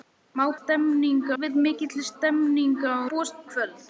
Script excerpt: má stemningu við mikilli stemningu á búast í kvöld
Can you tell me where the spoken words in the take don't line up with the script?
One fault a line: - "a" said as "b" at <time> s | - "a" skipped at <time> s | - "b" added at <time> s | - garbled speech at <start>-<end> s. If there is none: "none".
none